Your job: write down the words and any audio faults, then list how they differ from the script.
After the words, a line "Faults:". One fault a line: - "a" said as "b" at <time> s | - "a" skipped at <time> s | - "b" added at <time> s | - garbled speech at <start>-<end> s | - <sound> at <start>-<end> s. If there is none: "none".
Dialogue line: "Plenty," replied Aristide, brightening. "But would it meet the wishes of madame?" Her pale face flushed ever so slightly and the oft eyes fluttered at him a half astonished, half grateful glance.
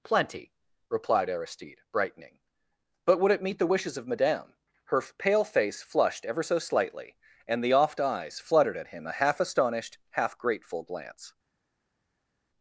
"Plenty," replied Aristide, brightening. "But would it meet the wishes of madame?" Her pale face flushed ever so slightly and the oft eyes fluttered at him a half astonished, half grateful glance.
Faults:
none